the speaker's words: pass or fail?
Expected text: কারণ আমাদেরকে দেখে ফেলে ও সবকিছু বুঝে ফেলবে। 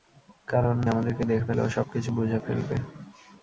pass